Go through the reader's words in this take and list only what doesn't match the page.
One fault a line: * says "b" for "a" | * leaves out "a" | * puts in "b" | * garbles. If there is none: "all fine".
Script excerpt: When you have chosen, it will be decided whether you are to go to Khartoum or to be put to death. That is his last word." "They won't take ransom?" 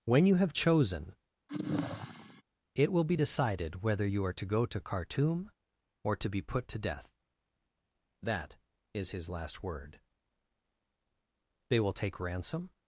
* says "will" for "won't"